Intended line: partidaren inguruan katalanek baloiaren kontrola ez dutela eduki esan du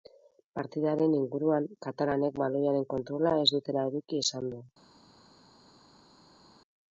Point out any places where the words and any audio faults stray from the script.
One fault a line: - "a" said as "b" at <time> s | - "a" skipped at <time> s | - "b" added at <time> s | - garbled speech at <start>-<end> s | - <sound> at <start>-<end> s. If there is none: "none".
none